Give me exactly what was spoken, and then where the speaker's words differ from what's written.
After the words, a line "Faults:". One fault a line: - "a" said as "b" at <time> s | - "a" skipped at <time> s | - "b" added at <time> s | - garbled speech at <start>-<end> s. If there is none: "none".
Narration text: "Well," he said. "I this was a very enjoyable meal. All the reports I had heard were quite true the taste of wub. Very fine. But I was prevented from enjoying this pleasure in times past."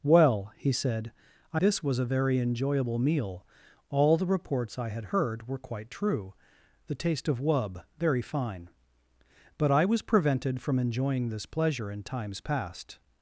"Well," he said. "I this was a very enjoyable meal. All the reports I had heard were quite true the taste of wub. Very fine. But I was prevented from enjoying this pleasure in times past."
Faults:
none